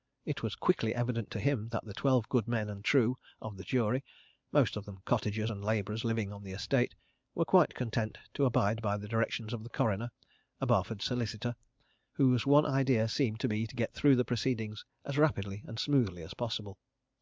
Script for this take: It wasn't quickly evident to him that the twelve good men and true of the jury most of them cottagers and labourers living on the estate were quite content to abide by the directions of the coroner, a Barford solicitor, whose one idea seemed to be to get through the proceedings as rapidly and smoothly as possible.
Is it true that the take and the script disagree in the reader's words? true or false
true